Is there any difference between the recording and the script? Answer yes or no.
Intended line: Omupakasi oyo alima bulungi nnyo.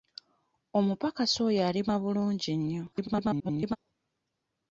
yes